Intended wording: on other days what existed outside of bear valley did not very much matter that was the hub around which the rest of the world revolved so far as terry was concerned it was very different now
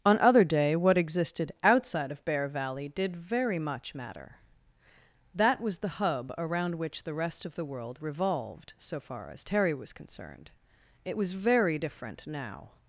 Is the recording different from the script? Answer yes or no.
yes